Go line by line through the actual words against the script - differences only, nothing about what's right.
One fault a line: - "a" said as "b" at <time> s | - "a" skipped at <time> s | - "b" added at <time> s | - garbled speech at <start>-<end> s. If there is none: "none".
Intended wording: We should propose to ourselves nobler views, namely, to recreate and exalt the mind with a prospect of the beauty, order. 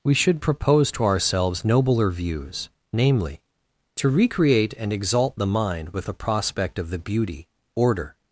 none